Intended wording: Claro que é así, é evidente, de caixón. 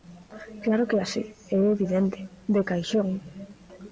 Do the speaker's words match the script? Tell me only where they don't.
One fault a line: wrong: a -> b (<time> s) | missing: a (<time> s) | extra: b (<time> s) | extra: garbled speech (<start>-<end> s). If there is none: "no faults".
no faults